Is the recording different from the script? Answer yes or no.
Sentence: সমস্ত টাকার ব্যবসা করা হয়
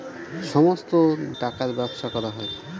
no